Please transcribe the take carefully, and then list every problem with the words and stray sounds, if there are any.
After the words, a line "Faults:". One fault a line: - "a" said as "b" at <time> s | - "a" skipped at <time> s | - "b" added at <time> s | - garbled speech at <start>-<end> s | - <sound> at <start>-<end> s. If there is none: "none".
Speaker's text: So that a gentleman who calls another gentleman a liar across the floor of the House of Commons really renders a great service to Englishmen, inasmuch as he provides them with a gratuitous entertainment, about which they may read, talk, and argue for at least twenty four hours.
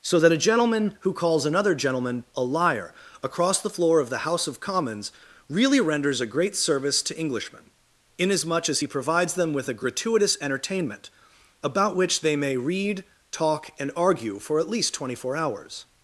So that a gentleman who calls another gentleman a liar across the floor of the House of Commons really renders a great service to Englishmen, inasmuch as he provides them with a gratuitous entertainment, about which they may read, talk, and argue for at least twenty four hours.
Faults:
none